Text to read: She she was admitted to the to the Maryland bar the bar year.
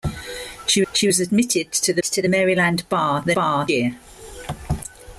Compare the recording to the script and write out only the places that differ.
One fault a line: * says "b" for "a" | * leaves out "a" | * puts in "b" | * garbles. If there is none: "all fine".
all fine